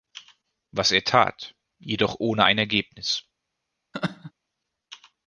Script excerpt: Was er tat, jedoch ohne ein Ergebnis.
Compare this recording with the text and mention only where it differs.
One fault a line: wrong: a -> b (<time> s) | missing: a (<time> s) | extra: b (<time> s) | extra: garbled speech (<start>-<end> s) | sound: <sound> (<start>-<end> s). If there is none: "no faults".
sound: laugh (3.9-4.3 s)